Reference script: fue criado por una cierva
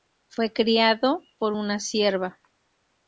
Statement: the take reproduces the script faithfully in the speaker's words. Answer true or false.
true